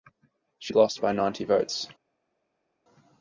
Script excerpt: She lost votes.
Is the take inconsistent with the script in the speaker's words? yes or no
yes